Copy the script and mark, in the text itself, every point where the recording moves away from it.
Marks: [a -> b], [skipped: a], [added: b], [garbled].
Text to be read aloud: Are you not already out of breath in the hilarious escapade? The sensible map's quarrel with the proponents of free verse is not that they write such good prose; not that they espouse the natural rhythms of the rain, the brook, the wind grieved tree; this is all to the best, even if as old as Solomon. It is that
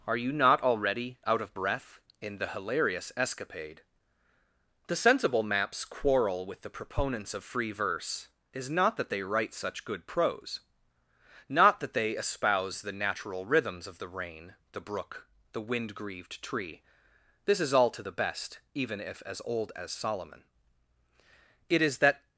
Are you not already out of breath in the hilarious escapade? The sensible map's quarrel with the proponents of free verse is not that they write such good prose; not that they espouse the natural rhythms of the rain, the brook, the wind grieved tree; this is all to the best, even if as old as Solomon. It is that